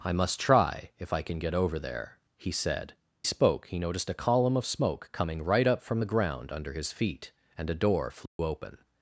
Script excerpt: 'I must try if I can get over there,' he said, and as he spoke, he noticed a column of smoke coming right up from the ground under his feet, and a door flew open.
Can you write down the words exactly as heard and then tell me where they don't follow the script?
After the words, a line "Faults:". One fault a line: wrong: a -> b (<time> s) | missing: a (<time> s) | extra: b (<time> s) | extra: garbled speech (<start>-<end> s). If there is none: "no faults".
'I must try if I can get over there,' he said, spoke, he noticed a column of smoke coming right up from the ground under his feet, and a door flew open.
Faults:
missing: and as he (2.9 s)